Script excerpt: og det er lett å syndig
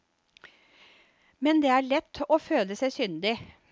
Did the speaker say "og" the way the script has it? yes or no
no